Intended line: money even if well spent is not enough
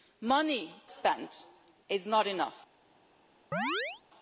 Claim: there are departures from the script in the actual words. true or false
true